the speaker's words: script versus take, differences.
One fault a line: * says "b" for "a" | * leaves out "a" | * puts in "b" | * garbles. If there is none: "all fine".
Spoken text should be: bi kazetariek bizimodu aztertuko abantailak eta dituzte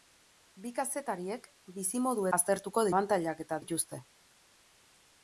all fine